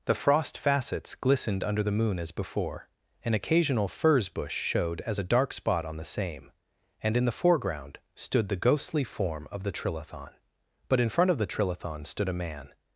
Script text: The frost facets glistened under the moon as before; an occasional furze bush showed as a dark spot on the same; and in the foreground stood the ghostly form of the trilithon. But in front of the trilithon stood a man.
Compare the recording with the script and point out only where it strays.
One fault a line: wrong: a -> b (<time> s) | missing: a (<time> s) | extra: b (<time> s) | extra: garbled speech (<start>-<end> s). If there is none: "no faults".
no faults